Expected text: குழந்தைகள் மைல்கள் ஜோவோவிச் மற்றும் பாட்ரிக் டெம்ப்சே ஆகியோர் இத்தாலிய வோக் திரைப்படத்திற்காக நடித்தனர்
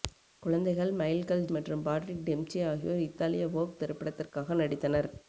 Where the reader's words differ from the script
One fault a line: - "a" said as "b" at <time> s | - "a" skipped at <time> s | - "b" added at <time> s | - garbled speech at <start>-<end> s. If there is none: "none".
- "ஜோவோவிச்" skipped at 1.4 s